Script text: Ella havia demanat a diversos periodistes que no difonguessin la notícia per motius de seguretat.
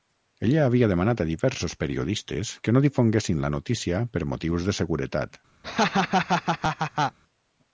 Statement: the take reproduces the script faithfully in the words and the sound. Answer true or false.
false